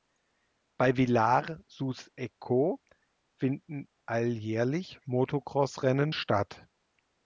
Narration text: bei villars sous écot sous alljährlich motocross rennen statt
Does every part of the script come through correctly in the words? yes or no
no